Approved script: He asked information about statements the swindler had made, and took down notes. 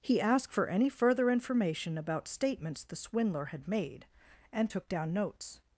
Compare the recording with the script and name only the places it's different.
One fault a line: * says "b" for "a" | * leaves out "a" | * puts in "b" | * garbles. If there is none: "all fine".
* puts in "for any further"